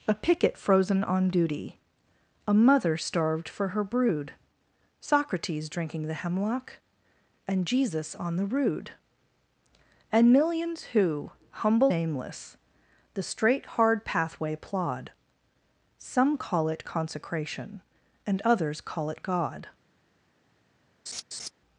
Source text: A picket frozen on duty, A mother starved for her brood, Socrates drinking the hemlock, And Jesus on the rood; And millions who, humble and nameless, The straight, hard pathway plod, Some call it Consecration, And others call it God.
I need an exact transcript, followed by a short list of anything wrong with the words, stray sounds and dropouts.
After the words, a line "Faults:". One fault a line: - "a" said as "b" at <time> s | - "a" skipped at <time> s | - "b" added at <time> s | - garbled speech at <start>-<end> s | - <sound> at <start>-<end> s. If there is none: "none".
A picket frozen on duty, A mother starved for her brood, Socrates drinking the hemlock, And Jesus on the rood; And millions who, humble nameless, The straight, hard pathway plod, Some call it Consecration, And others call it God.
Faults:
- "and" skipped at 11.9 s
- laugh at 21.1-21.5 s